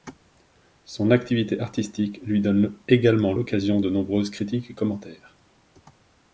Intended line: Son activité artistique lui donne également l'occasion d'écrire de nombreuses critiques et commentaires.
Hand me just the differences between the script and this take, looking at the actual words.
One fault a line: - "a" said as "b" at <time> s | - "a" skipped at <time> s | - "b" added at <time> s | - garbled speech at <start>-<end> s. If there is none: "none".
- "d'écrire" skipped at 3.8 s